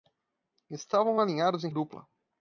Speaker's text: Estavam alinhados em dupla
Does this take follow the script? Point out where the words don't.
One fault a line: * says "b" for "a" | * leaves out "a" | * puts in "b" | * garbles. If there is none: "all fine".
all fine